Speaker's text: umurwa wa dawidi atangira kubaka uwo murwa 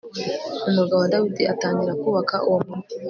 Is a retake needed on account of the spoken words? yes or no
no